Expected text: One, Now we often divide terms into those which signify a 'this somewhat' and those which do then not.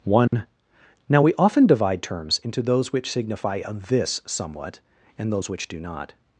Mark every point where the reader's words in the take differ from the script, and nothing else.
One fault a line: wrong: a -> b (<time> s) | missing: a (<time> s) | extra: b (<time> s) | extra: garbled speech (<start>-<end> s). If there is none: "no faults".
missing: then (5.8 s)